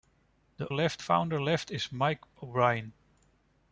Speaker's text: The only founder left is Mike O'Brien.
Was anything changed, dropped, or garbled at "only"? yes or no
yes